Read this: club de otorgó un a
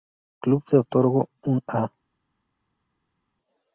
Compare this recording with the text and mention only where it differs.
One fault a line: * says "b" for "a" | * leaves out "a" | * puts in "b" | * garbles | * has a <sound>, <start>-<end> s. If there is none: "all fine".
all fine